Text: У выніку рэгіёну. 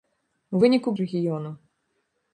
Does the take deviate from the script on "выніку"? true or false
false